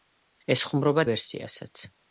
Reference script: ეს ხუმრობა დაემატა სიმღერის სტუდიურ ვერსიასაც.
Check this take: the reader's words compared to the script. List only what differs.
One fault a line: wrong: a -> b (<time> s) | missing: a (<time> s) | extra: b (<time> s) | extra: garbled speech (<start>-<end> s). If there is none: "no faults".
missing: დაემატა სიმღერის სტუდიურ (1.0 s)